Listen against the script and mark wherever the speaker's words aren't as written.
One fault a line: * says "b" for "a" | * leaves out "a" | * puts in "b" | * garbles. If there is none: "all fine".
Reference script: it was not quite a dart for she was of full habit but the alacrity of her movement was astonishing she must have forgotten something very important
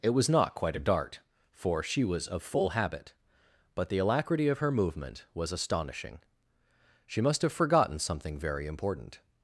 all fine